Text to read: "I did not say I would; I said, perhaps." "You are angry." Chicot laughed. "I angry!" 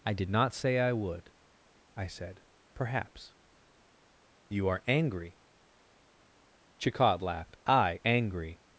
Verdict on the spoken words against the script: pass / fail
pass